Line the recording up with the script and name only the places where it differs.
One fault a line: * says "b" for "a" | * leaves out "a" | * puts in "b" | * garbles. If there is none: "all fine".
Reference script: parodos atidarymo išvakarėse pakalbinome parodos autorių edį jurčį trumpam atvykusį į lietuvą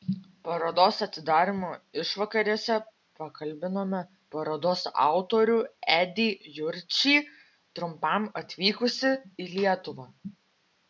all fine